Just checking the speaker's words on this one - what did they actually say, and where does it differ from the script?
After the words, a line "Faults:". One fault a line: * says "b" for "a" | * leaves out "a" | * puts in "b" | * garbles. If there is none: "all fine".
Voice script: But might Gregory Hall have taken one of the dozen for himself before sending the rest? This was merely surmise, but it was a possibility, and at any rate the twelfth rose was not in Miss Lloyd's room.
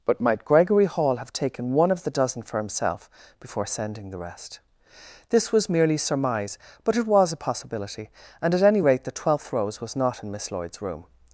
But might Gregory Hall have taken one of the dozen for himself before sending the rest? This was merely surmise, but it was a possibility, and at any rate the twelfth rose was not in Miss Lloyd's room.
Faults:
all fine